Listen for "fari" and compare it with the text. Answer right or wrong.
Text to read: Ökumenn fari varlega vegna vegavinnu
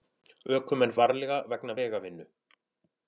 wrong